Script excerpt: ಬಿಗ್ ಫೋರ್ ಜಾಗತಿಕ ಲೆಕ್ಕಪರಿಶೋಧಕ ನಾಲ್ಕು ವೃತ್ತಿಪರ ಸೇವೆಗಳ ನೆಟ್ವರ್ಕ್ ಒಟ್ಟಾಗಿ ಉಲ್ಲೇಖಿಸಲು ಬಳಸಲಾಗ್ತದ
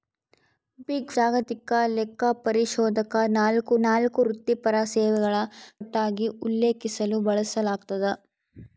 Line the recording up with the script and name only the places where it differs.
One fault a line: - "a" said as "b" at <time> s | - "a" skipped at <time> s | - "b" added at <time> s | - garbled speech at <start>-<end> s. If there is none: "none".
- "ಫೋರ್" skipped at 1.1 s
- "ನಾಲ್ಕು" added at 3.8 s
- "ನೆಟ್ವರ್ಕ್" skipped at 5.3 s